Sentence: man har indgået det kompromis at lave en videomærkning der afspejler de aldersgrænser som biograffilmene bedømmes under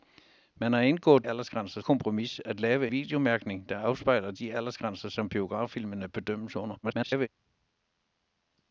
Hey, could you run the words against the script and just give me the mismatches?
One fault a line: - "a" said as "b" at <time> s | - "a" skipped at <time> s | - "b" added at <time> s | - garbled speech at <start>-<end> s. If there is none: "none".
- "det" said as "aldersgrænser" at 1.3 s
- "en" skipped at 2.9 s
- garbled speech at 6.8-7.3 s